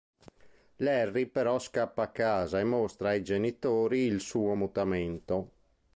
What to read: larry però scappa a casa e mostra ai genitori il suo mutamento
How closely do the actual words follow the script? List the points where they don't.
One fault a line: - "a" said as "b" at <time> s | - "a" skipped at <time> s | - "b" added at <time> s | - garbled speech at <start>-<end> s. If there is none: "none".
none